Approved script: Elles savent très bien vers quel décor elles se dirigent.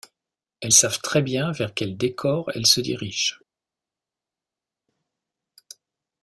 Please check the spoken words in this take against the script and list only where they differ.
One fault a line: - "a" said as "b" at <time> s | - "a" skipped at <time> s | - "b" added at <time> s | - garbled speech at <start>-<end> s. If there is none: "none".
none